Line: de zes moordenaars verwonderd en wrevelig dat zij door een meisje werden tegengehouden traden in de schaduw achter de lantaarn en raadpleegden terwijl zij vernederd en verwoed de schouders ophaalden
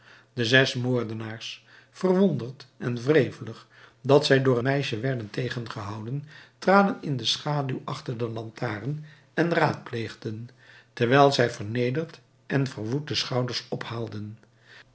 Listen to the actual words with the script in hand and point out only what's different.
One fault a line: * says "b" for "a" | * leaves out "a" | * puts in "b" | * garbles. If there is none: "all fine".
* leaves out "een"